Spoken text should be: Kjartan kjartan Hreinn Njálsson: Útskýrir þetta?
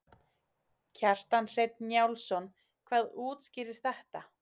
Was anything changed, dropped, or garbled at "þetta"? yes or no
no